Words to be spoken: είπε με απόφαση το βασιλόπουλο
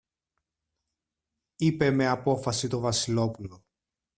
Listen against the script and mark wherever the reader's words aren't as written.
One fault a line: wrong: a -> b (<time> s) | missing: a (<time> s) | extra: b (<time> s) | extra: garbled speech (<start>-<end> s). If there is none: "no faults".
no faults